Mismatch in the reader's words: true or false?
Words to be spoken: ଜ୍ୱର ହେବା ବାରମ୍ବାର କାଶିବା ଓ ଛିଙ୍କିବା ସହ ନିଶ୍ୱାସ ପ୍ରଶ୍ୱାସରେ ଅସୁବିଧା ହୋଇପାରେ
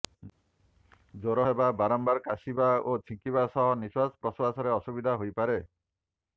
false